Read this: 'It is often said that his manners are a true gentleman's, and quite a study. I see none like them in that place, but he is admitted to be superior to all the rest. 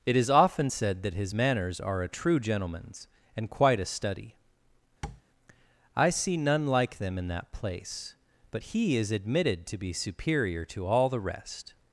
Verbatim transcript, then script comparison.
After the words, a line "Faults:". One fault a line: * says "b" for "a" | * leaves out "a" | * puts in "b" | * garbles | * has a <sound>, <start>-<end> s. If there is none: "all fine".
'It is often said that his manners are a true gentleman's, and quite a study. I see none like them in that place, but he is admitted to be superior to all the rest.
Faults:
* has a tap, 5.0-5.2 s